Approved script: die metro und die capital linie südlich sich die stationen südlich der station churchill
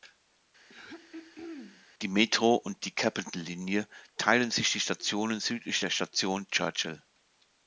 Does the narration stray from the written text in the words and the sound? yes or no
yes